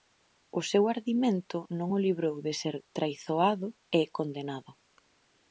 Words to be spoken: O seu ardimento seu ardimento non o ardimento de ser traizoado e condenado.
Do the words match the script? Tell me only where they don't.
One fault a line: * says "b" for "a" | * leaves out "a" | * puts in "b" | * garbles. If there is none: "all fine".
* leaves out "seu ardimento"
* says "librou" for "ardimento"